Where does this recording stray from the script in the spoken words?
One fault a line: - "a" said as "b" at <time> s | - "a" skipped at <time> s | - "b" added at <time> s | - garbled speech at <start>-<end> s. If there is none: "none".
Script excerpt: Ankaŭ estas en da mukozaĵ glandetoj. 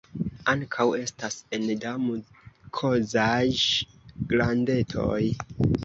none